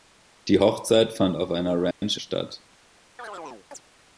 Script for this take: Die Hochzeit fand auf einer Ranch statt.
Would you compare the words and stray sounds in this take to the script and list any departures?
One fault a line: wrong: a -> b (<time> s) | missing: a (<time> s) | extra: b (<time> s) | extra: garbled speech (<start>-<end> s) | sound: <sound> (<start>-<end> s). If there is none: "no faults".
sound: dropout (1.9-2.0 s)
sound: chirp (3.2-3.8 s)